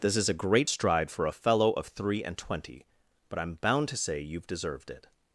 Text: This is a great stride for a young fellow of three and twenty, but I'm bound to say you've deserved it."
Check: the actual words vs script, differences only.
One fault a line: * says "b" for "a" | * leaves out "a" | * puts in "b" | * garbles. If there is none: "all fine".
* leaves out "young"